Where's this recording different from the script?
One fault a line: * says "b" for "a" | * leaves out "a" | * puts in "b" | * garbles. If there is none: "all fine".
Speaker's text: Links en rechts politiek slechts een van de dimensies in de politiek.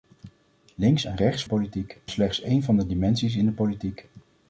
all fine